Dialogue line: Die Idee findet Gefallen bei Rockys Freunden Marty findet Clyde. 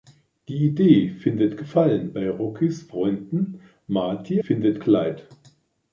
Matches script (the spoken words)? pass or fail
pass